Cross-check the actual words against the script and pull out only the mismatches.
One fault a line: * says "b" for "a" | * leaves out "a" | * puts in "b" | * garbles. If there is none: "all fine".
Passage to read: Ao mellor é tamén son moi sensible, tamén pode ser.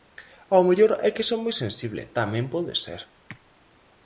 * says "que" for "tamén"